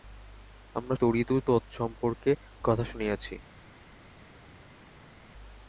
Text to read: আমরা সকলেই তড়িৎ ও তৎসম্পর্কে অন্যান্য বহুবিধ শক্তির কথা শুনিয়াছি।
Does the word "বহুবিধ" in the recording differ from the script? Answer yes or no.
yes